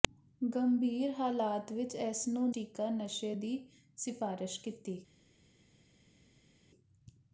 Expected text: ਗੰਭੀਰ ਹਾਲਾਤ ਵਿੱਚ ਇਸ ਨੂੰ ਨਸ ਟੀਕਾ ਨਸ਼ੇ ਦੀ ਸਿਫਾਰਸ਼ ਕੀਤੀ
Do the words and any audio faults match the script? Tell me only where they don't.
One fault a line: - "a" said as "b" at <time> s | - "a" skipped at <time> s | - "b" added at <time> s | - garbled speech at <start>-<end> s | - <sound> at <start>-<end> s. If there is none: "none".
- "ਨਸ" skipped at 2.5 s